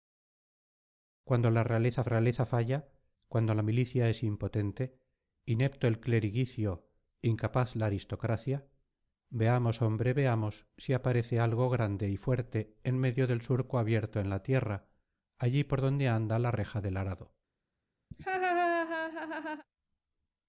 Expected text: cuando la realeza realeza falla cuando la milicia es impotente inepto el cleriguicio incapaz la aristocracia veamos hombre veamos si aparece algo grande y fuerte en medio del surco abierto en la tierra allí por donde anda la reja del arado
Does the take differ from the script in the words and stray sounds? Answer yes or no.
yes